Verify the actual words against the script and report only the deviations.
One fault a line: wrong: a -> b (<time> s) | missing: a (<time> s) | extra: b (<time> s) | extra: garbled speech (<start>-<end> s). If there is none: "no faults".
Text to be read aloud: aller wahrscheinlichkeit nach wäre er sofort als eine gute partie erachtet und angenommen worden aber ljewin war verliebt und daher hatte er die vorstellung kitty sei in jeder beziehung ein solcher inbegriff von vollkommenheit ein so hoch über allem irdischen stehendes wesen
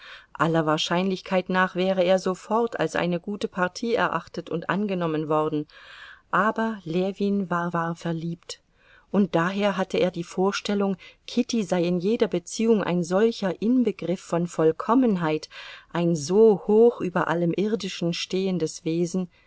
extra: war (7.7 s)